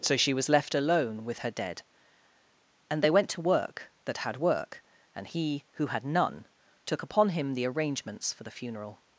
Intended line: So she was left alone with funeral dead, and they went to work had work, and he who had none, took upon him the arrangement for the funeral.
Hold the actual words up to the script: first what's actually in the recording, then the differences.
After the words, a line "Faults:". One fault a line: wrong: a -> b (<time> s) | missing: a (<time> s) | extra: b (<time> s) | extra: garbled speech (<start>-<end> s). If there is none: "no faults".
So she was left alone with her dead, and they went to work that had work, and he who had none, took upon him the arrangements for the funeral.
Faults:
wrong: funeral -> her (1.4 s)
extra: that (4.0 s)
wrong: arrangement -> arrangements (7.7 s)